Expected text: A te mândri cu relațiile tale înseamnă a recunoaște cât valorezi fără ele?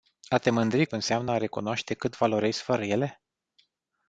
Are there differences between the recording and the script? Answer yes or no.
yes